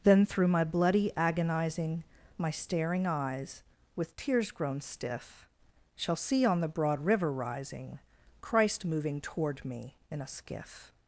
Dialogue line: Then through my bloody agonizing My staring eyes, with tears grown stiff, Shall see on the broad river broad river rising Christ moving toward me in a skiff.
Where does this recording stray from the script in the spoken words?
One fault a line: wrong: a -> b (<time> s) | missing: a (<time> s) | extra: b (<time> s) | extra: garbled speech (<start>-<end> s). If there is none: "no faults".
missing: broad river (7.3 s)